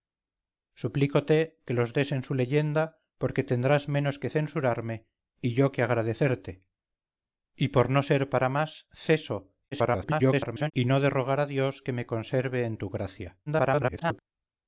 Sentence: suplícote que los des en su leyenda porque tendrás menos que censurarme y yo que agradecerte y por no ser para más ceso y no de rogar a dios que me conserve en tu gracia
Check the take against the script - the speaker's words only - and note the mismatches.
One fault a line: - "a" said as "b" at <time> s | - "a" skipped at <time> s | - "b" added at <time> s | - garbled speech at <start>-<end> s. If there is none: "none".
- garbled speech at 9.7-10.7 s
- garbled speech at 13.5-14.2 s